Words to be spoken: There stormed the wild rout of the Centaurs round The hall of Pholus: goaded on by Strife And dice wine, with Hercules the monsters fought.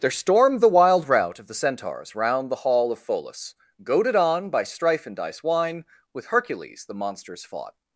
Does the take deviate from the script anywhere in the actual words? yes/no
no